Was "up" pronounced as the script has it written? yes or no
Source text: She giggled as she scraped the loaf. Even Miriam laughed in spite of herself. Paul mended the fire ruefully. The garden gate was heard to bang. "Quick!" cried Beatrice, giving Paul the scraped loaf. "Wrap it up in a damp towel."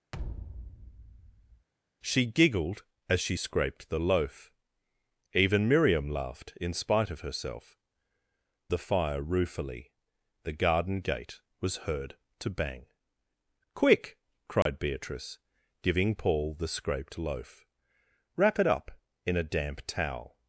yes